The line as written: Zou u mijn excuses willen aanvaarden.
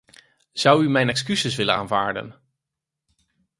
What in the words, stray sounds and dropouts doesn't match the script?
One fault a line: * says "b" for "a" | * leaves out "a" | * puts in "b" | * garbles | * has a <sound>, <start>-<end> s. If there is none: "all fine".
all fine